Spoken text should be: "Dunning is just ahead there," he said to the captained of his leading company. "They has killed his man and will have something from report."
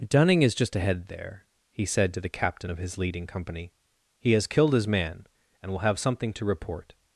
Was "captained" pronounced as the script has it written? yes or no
no